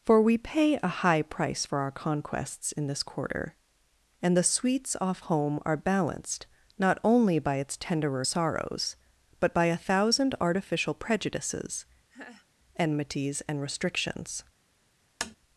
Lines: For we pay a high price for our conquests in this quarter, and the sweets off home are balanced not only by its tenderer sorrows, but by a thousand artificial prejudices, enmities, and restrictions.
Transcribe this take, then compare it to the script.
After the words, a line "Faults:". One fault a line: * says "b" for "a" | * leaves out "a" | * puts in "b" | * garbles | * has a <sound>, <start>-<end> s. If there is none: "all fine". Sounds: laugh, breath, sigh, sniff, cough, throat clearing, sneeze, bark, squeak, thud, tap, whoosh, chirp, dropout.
For we pay a high price for our conquests in this quarter, and the sweets off home are balanced not only by its tenderer sorrows, but by a thousand artificial prejudices, enmities, and restrictions.
Faults:
* has a laugh, 12.1-12.5 s
* has a tap, 15.2-15.4 s